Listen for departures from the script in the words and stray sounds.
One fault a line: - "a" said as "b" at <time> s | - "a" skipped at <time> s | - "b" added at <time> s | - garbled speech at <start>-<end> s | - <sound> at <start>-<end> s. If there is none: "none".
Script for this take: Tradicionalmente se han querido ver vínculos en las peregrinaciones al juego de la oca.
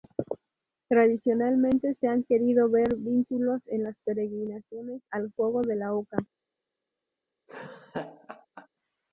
- laugh at 7.5-8.7 s